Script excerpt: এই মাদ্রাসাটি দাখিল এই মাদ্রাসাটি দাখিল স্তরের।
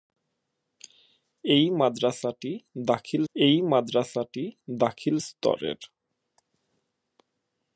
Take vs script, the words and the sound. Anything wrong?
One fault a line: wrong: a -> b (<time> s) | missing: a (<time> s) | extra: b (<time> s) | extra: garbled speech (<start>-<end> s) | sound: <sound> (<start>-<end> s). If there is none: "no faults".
no faults